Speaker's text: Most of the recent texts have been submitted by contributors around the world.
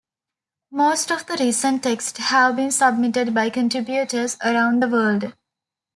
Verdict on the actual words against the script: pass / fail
pass